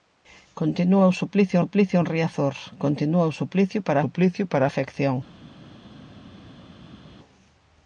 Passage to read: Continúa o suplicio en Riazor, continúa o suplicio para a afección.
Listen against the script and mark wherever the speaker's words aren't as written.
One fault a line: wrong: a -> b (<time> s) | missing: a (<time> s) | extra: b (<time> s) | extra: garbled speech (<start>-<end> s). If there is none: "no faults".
extra: suplicio (1.6 s)
extra: suplicio para (4.0 s)